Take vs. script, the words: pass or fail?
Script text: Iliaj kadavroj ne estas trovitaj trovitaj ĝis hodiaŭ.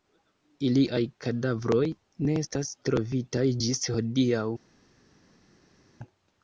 fail